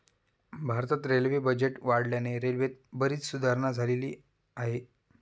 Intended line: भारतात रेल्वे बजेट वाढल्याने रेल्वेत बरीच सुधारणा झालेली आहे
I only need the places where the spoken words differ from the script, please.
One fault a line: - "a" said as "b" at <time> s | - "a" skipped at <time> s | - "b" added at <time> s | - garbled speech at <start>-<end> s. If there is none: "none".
none